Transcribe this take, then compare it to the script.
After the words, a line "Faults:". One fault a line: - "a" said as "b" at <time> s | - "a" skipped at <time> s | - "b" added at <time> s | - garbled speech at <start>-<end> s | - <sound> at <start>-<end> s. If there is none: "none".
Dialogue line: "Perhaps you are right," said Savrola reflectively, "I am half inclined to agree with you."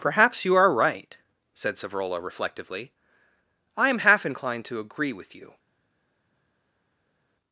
"Perhaps you are right," said Savrola reflectively, "I am half inclined to agree with you."
Faults:
none